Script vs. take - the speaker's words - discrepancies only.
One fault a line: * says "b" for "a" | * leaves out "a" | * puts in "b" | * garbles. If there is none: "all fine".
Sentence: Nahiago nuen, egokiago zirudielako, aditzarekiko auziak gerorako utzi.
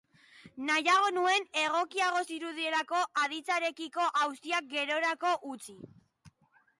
all fine